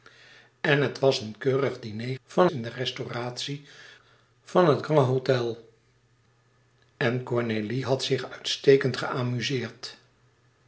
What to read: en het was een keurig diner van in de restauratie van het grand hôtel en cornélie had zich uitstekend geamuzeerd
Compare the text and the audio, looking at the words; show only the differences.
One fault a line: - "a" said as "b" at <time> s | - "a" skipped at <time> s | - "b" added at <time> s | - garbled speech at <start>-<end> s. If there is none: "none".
none